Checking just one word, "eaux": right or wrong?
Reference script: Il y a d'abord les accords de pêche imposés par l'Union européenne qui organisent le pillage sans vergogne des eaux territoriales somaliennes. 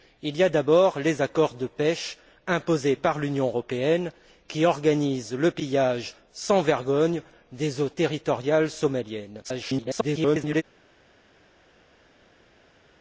right